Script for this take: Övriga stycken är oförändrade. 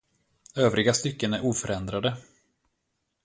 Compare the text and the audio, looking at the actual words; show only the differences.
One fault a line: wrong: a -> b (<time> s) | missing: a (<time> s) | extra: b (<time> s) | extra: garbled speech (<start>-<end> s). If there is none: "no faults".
no faults